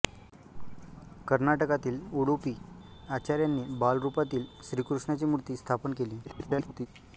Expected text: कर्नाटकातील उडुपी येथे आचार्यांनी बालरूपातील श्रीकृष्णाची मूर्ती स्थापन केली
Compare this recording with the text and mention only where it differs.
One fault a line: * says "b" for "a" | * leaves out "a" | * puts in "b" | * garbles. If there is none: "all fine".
* leaves out "येथे"
* garbles